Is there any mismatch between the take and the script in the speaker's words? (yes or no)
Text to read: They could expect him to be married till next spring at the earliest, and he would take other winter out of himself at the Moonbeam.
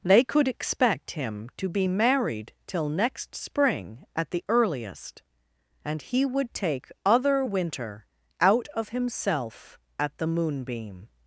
no